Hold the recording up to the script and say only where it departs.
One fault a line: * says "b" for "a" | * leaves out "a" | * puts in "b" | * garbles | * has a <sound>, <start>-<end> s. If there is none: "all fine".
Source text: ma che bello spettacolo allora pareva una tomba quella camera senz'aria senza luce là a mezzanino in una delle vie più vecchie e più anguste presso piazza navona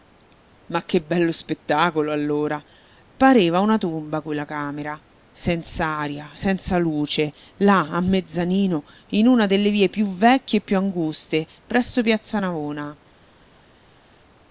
all fine